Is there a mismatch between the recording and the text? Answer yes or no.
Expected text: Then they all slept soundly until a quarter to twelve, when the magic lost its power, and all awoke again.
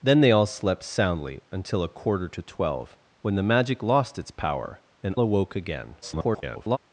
yes